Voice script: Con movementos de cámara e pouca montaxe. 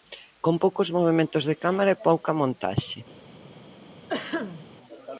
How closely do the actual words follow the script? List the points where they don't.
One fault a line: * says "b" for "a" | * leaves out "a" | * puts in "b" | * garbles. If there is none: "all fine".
* puts in "poucos"